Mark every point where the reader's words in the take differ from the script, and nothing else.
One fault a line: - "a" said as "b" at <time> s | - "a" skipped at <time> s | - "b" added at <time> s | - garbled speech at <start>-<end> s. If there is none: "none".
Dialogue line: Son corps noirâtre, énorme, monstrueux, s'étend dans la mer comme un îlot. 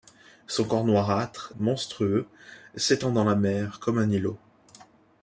- "énorme" skipped at 1.5 s